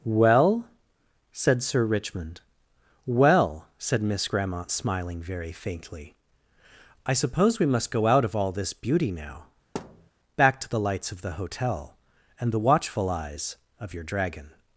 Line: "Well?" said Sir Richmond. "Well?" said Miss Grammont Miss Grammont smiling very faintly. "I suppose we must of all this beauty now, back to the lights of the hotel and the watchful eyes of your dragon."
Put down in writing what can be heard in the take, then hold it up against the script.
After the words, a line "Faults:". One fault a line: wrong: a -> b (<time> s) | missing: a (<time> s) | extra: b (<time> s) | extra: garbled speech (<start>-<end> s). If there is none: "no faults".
"Well?" said Sir Richmond. "Well?" said Miss Grammont smiling very faintly. "I suppose we must go out of all this beauty now, back to the lights of the hotel and the watchful eyes of your dragon."
Faults:
missing: Miss Grammont (4.7 s)
extra: go out (7.9 s)